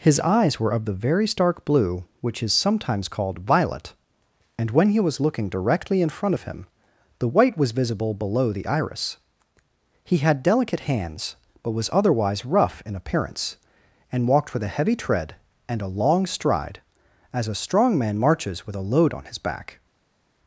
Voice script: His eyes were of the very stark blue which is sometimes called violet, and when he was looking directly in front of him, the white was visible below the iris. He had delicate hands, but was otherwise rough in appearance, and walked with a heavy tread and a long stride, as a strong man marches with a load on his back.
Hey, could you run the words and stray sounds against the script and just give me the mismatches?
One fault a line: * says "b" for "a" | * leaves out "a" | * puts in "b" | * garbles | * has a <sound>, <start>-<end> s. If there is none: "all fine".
all fine